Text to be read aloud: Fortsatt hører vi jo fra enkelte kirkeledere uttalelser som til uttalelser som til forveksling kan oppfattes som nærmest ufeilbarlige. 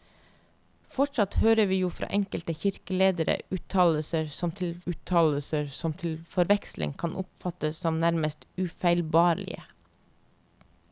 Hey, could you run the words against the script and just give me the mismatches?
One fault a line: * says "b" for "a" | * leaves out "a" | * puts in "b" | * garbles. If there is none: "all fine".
all fine